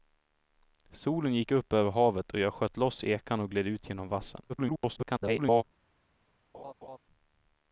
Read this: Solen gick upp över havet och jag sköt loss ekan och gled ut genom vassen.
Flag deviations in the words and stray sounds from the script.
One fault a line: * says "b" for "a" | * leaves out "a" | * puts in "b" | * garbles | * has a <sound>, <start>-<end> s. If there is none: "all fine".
* garbles
* has a laugh, 6.5-7.0 s